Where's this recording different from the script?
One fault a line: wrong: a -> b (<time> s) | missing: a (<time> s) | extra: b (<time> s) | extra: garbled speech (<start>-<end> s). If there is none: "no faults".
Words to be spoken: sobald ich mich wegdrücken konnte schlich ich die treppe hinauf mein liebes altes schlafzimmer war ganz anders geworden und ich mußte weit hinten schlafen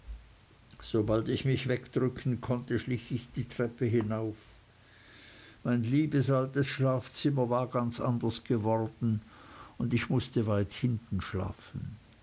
no faults